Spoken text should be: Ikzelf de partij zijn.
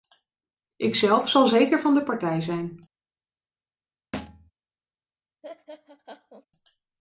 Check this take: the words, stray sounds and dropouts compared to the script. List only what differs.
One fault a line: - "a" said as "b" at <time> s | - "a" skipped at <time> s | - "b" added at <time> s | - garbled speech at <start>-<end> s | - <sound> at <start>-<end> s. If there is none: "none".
- "zal zeker van" added at 1.3 s
- thud at 4.1-4.5 s
- laugh at 5.4-6.5 s